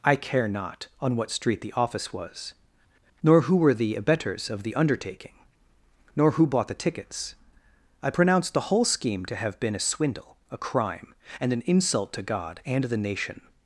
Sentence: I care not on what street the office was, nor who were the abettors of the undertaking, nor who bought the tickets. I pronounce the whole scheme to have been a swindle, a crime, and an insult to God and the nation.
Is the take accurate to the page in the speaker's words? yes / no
yes